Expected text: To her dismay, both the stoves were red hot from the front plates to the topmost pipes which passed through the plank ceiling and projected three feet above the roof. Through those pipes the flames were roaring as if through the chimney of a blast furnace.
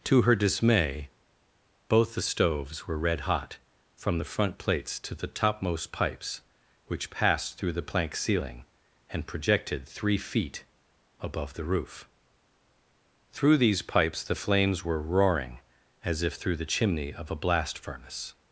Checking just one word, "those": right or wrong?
wrong